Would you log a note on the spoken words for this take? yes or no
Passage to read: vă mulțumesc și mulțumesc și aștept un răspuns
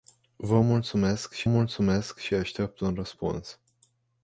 no